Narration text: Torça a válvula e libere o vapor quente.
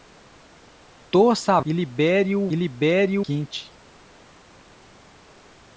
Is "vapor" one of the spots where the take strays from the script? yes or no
yes